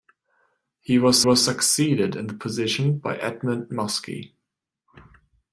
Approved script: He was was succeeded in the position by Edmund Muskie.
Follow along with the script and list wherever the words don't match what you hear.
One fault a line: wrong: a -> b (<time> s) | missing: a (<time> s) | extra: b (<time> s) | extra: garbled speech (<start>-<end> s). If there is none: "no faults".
no faults